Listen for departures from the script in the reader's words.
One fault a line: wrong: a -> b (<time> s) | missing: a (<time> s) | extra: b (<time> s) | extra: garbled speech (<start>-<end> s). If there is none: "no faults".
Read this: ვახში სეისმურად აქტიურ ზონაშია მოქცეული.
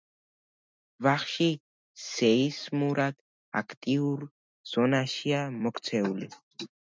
no faults